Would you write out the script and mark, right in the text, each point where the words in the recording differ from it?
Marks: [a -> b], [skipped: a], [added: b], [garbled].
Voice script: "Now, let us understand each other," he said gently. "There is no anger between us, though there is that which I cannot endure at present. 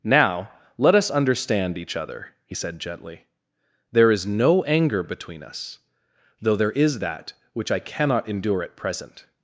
"Now, let us understand each other," he said gently. "There is no anger between us, though there is that which I cannot endure at present.